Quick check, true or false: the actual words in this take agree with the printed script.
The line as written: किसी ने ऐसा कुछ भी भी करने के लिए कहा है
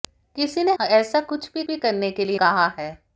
true